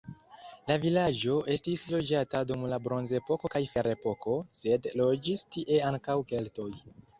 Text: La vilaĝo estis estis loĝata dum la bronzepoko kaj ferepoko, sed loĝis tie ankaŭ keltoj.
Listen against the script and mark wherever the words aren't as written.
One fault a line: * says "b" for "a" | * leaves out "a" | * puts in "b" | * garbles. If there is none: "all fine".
* leaves out "estis"